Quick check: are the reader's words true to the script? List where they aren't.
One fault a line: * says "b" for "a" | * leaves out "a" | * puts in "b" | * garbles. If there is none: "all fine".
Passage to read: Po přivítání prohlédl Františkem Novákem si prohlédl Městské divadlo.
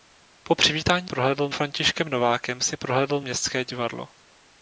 all fine